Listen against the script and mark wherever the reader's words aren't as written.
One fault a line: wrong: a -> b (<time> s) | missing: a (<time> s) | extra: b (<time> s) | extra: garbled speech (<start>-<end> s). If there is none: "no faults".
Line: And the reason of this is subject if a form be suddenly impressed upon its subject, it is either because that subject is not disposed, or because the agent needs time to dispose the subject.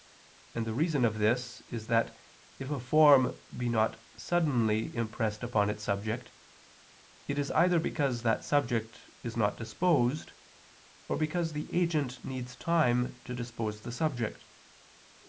wrong: subject -> that (1.9 s)
extra: not (3.7 s)